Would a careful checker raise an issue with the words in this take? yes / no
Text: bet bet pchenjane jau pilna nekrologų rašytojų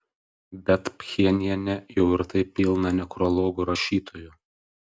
yes